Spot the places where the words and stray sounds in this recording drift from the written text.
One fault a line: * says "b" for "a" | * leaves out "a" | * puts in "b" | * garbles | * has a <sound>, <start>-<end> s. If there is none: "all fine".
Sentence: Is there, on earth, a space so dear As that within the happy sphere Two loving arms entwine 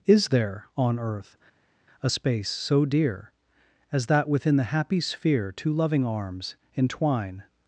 all fine